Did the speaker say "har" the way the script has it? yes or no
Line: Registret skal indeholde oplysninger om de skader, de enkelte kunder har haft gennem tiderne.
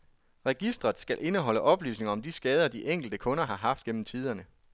yes